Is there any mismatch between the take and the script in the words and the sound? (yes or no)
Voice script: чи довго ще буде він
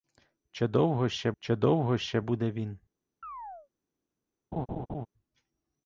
yes